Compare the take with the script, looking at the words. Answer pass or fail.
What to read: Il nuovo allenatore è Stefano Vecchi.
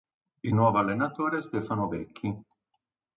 pass